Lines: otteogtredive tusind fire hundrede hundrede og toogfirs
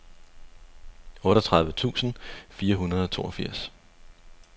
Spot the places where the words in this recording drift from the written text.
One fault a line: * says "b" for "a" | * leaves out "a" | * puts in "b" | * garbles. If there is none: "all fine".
* leaves out "hundrede"